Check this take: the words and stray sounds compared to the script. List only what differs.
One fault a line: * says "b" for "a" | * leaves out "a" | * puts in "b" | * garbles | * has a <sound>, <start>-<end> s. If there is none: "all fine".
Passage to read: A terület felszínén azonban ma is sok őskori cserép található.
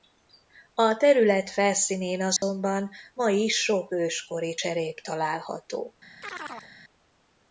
* has a dropout, 2.4-2.4 s
* has a chirp, 6.2-6.7 s